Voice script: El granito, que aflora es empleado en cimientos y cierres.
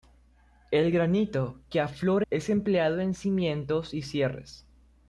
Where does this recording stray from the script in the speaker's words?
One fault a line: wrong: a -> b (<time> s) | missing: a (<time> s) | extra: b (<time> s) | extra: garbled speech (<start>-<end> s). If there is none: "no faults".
no faults